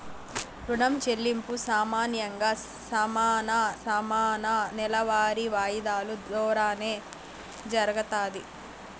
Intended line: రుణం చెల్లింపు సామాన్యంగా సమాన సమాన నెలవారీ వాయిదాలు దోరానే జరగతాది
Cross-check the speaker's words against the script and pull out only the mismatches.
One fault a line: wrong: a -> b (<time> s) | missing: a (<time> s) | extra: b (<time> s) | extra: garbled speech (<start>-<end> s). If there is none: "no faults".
no faults